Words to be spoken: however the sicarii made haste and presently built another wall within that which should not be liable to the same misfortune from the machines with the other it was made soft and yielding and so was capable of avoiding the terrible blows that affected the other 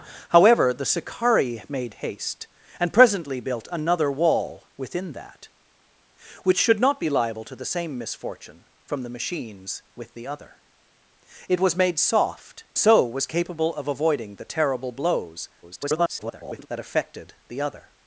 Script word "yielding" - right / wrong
wrong